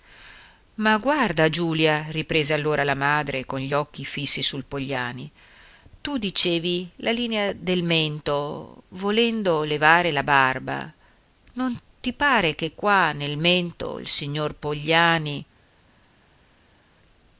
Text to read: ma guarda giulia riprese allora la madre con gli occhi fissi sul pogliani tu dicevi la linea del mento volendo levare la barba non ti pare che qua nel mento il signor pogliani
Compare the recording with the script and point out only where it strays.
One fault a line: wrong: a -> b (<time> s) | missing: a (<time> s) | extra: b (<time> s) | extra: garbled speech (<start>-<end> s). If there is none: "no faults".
no faults